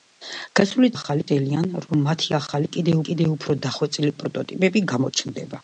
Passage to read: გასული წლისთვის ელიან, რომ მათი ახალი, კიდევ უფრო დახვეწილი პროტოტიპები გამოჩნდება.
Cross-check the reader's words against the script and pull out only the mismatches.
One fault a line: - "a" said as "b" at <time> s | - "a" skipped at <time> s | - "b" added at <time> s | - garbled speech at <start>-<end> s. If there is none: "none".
- "წლისთვის" said as "ახალი" at 0.9 s
- "კიდევ" added at 3.1 s